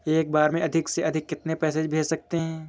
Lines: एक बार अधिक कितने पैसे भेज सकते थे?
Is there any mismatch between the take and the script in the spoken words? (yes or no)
yes